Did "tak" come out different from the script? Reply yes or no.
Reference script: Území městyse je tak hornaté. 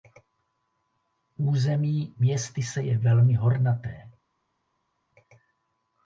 yes